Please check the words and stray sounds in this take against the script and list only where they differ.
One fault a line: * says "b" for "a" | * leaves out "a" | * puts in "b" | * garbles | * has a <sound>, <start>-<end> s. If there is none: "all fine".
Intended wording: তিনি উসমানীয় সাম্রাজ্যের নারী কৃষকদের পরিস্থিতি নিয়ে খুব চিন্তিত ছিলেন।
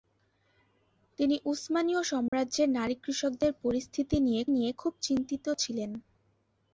* has a dropout, 2.3-2.3 s
* puts in "নিয়ে"